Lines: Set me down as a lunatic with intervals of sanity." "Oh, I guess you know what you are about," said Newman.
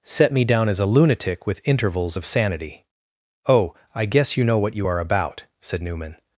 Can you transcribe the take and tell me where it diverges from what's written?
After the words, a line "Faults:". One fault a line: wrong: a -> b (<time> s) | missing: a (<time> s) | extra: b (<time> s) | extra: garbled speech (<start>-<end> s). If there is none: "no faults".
Set me down as a lunatic with intervals of sanity." "Oh, I guess you know what you are about," said Newman.
Faults:
no faults